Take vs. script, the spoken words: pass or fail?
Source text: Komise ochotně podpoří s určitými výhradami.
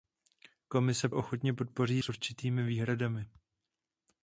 pass